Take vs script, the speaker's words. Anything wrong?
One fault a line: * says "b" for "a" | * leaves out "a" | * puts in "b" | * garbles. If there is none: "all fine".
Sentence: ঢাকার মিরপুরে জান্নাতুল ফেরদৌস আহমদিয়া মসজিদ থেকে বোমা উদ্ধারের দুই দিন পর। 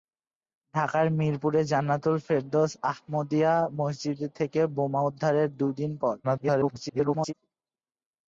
* garbles